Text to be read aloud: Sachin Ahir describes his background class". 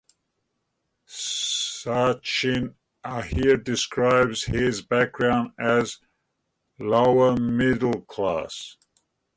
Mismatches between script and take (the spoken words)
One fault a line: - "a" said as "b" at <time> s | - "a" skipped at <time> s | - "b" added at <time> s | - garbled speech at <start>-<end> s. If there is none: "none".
- "as lower middle" added at 5.6 s